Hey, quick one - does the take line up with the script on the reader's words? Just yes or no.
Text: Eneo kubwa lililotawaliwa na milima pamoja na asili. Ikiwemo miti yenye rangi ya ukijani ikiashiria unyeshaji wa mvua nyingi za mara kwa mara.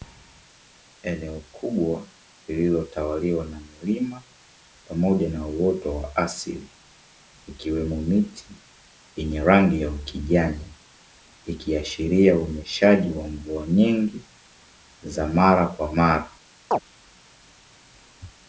no